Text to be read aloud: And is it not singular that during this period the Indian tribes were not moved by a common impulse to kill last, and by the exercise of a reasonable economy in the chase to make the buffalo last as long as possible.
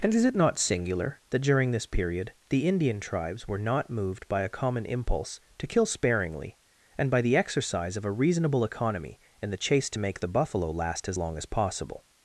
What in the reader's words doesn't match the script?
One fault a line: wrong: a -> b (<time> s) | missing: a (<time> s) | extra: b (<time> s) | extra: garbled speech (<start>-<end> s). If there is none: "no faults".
wrong: last -> sparingly (5.8 s)